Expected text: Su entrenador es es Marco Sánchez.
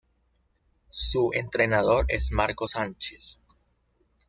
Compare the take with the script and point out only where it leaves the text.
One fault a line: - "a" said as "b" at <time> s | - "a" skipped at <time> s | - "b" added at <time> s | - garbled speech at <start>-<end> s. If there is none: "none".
- "es" skipped at 2.3 s